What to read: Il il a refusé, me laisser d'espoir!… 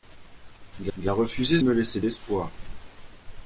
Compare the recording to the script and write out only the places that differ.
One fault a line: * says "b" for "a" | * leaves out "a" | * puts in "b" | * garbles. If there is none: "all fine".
all fine